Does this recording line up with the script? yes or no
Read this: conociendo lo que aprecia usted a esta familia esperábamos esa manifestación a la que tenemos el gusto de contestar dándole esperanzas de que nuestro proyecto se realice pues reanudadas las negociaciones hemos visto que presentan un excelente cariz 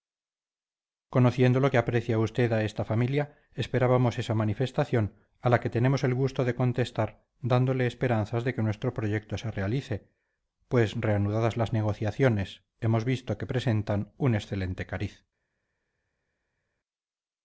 yes